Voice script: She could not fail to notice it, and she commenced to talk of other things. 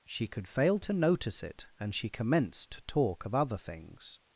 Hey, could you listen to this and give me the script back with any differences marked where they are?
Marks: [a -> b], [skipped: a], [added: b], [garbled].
She could [skipped: not] fail to notice it, and she commenced to talk of other things.